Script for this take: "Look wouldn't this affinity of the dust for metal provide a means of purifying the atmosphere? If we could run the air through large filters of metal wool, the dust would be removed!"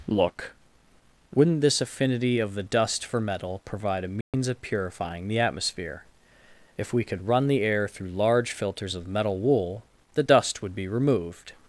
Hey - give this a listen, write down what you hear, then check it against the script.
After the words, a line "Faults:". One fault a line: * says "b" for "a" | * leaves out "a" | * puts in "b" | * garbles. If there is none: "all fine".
"Look wouldn't this affinity of the dust for metal provide a means of purifying the atmosphere? If we could run the air through large filters of metal wool, the dust would be removed!"
Faults:
all fine